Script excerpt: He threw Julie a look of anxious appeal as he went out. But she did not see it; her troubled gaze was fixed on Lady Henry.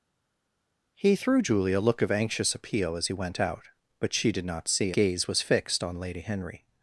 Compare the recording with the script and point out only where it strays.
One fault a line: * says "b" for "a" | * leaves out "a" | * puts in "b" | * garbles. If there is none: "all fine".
* leaves out "it her troubled"